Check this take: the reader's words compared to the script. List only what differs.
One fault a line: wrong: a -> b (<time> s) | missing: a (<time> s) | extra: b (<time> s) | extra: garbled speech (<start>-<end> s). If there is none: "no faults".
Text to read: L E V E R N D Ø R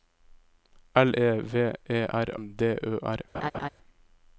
no faults